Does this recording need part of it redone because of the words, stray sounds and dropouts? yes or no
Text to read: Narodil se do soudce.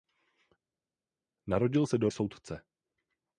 no